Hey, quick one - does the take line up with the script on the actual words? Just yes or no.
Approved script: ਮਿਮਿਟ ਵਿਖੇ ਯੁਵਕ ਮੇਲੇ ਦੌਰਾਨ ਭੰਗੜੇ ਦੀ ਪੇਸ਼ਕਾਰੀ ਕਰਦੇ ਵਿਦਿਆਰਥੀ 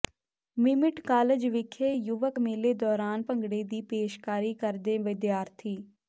no